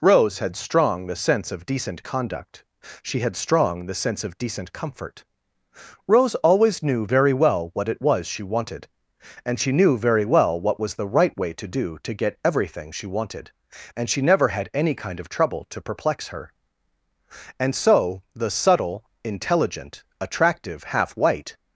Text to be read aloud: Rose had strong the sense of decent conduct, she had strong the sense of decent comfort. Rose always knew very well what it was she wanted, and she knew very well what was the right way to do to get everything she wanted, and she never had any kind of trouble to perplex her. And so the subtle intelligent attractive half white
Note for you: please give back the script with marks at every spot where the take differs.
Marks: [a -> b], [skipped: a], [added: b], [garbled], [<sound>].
Rose had strong the sense of decent conduct, she had strong the sense of decent comfort. Rose always knew very well what it was she wanted, and she knew very well what was the right way to do to get everything she wanted, and she never had any kind of trouble to perplex her. And so the subtle intelligent attractive half white